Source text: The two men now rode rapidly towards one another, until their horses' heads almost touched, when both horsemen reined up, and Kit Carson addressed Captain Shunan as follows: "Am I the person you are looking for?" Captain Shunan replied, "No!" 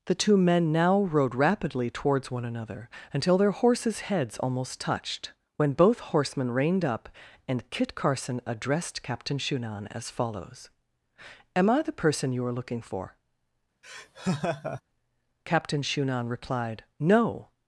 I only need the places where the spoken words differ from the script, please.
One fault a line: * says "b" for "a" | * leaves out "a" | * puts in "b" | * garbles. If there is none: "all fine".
all fine